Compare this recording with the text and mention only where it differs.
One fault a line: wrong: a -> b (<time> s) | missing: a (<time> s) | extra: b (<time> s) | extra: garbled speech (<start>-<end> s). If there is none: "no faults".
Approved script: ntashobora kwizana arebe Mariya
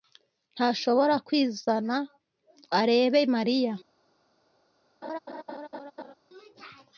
no faults